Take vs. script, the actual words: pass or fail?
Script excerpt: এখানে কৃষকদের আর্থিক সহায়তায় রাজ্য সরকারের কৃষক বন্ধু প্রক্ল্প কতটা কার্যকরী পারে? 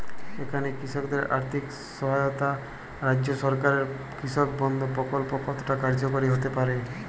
fail